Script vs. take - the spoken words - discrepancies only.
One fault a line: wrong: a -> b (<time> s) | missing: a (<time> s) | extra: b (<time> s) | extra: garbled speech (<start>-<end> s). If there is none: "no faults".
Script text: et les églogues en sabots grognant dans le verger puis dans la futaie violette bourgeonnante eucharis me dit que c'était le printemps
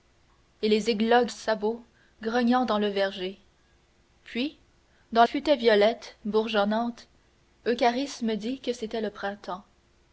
missing: en (1.3 s)
missing: la (5.2 s)